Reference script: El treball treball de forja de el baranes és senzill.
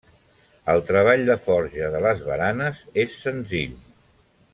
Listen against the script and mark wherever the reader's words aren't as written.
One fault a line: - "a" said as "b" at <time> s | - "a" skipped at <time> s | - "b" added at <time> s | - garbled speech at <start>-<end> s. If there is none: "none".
- "treball" skipped at 1.2 s
- "el" said as "les" at 2.0 s